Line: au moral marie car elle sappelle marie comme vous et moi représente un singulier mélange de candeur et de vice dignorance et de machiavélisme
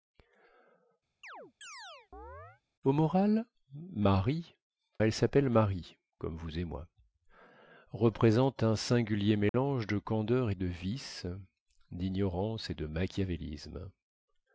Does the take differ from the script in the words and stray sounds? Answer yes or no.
yes